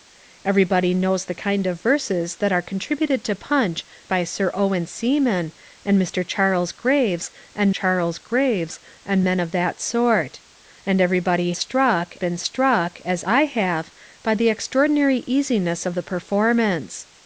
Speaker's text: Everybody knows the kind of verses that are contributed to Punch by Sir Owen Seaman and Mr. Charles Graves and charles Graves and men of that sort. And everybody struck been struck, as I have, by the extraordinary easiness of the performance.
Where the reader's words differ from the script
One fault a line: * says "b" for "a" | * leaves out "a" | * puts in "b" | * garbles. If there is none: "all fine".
all fine